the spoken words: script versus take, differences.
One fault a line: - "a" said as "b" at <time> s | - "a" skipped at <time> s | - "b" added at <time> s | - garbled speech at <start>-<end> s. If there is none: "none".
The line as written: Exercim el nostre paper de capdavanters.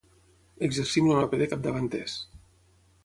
- "nostre" skipped at 1.2 s